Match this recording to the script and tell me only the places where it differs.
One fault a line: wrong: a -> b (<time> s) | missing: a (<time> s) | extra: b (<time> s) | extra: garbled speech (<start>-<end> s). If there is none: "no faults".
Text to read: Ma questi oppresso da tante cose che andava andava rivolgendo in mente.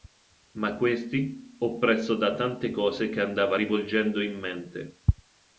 missing: andava (3.5 s)